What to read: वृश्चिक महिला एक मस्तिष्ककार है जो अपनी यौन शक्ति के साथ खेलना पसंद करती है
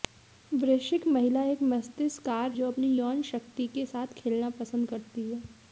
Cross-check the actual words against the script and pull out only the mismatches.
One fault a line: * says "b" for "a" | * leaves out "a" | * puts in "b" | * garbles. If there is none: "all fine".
* leaves out "है"